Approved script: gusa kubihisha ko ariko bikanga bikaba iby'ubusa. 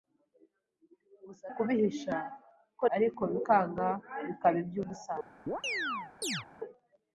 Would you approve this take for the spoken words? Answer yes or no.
yes